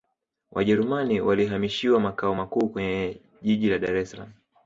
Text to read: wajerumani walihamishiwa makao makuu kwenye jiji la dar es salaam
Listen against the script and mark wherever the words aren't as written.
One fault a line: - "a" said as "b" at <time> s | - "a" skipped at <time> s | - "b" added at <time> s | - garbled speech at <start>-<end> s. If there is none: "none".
none